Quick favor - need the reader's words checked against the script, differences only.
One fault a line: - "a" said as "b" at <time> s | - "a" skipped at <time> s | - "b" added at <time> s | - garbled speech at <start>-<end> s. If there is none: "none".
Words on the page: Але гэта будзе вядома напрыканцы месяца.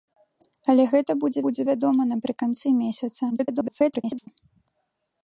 - "будзе" added at 1.5 s
- garbled speech at 3.3-4.3 s